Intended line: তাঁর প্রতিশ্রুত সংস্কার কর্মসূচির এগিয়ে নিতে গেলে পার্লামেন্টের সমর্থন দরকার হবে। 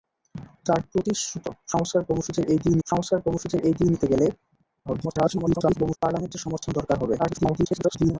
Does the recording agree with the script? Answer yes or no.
no